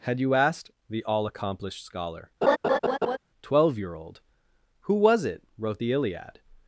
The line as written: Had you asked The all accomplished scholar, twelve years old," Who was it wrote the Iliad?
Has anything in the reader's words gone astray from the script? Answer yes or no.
yes